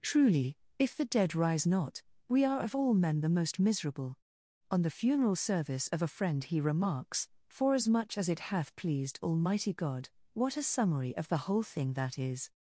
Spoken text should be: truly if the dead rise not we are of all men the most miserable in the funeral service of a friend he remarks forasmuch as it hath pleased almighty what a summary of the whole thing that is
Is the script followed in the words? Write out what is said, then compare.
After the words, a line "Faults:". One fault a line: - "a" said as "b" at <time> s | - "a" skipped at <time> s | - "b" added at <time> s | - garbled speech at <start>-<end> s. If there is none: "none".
truly if the dead rise not we are of all men the most miserable on the funeral service of a friend he remarks forasmuch as it hath pleased almighty god what a summary of the whole thing that is
Faults:
- "in" said as "on" at 4.7 s
- "god" added at 9.7 s